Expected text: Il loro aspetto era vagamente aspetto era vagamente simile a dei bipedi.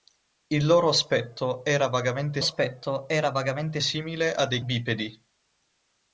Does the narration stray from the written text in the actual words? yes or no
no